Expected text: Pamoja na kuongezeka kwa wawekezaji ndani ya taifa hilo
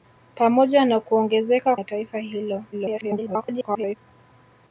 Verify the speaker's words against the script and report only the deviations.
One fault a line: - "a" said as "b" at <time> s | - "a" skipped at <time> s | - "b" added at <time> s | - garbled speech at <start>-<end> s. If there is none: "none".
- "kwa wawekezaji ndani" skipped at 1.8 s
- garbled speech at 2.7-4.0 s